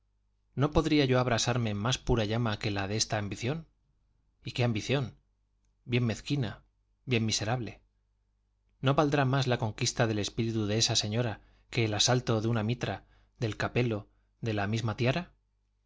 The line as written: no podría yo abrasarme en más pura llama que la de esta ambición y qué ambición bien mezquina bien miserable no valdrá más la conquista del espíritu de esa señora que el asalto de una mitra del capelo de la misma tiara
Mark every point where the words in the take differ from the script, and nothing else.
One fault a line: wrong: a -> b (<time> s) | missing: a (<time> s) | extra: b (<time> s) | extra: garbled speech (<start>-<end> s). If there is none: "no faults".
no faults